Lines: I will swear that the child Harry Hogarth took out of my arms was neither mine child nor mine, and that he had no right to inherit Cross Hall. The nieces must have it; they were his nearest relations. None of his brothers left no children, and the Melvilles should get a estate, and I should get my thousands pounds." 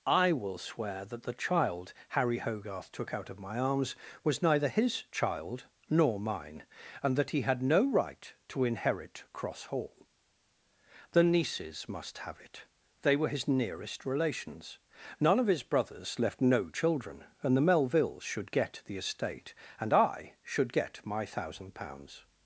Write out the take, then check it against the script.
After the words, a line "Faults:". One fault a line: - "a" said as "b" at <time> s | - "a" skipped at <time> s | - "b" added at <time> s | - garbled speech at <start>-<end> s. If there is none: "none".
I will swear that the child Harry Hogarth took out of my arms was neither his child nor mine, and that he had no right to inherit Cross Hall. The nieces must have it; they were his nearest relations. None of his brothers left no children, and the Melvilles should get the estate, and I should get my thousand pounds."
Faults:
- "mine" said as "his" at 4.7 s
- "a" said as "the" at 18.9 s
- "thousands" said as "thousand" at 21.3 s